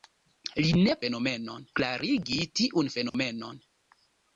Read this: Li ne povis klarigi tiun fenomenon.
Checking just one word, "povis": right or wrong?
wrong